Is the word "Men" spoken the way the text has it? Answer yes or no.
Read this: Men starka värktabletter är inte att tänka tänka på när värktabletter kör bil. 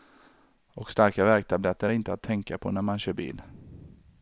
no